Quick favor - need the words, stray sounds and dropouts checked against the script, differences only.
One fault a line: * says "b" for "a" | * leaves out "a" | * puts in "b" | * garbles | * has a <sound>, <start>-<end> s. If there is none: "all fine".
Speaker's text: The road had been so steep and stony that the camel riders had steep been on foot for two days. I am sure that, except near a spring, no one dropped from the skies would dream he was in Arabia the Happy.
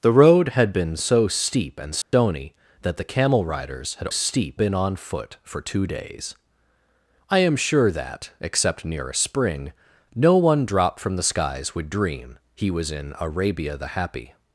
* has a dropout, 2.0-2.1 s